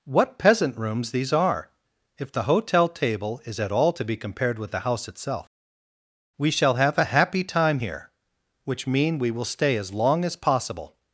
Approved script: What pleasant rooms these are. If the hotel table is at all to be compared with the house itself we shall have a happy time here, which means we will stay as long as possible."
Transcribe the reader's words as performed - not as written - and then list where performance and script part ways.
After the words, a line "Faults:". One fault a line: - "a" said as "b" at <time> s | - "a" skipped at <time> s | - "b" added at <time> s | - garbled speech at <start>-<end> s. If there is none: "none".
What peasant rooms these are. If the hotel table is at all to be compared with the house itself we shall have a happy time here, which mean we will stay as long as possible."
Faults:
- "pleasant" said as "peasant" at 0.4 s
- "means" said as "mean" at 8.9 s